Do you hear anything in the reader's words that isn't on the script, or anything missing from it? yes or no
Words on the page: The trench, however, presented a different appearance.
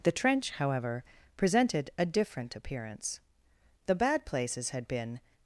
yes